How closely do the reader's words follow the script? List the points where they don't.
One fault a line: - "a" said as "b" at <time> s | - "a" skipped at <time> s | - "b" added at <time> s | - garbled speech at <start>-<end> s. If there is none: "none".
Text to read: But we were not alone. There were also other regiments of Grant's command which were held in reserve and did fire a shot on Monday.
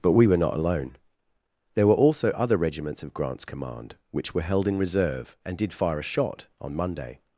none